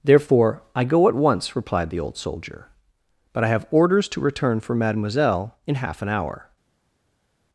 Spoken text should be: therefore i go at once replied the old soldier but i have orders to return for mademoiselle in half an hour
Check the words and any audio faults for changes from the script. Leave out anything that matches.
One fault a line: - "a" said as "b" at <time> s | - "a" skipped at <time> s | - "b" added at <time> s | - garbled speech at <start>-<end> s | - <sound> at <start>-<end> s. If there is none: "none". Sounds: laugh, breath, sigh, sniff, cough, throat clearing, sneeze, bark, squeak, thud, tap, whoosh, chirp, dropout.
none